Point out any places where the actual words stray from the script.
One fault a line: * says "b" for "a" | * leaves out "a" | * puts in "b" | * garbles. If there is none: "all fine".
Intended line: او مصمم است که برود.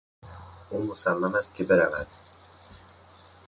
all fine